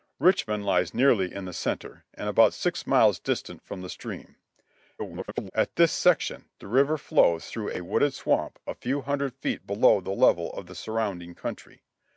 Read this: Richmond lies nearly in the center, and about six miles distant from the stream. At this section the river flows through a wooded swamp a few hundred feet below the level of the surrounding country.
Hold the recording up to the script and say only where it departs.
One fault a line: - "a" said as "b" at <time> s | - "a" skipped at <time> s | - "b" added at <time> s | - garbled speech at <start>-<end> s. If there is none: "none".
- garbled speech at 5.0-5.5 s